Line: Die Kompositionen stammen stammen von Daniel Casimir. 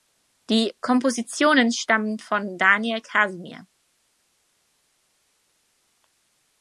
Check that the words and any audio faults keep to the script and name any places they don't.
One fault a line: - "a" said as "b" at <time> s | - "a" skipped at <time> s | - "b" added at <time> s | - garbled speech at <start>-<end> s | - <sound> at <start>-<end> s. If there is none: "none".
- "stammen" skipped at 2.2 s